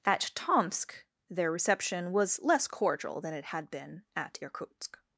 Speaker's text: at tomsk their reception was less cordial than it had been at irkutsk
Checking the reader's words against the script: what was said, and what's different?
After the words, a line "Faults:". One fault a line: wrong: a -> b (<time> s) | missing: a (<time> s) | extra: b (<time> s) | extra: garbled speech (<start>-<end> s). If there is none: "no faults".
at tomsk their reception was less cordial than it had been at irkutsk
Faults:
no faults